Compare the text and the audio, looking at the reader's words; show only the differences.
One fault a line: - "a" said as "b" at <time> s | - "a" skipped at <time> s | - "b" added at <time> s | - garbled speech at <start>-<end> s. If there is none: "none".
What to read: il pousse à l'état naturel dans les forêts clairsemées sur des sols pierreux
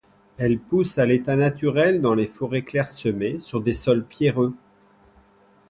- "il" said as "elle" at 0.4 s